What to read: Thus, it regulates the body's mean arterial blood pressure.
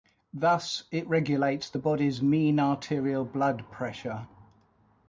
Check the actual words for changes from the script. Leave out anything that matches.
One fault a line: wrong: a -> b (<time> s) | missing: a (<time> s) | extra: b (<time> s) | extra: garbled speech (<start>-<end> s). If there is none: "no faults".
no faults